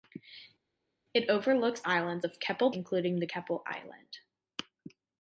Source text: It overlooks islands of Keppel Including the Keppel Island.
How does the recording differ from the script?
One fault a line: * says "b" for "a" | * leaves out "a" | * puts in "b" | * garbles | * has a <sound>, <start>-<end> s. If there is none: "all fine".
all fine